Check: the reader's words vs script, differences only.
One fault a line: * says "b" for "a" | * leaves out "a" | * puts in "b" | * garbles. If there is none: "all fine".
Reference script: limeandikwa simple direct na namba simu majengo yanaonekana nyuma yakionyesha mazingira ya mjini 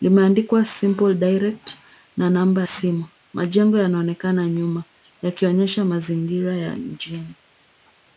all fine